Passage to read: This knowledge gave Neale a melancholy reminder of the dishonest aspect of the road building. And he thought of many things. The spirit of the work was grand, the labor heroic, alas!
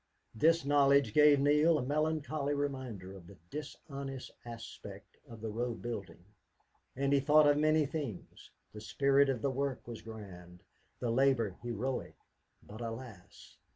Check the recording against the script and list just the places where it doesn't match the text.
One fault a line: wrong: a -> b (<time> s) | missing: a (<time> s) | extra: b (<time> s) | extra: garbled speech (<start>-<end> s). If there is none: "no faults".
extra: but (12.6 s)